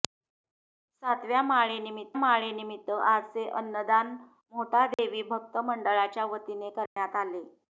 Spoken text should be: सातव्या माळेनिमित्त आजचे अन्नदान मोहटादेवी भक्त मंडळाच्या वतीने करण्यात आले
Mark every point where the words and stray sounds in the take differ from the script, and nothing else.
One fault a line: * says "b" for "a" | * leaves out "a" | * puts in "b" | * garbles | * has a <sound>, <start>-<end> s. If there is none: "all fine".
* puts in "माळेनिमित्त"
* has a dropout, 4.9-5.0 s
* has a dropout, 6.9-7.0 s